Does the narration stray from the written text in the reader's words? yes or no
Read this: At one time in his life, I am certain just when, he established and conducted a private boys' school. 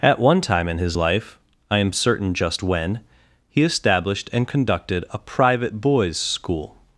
no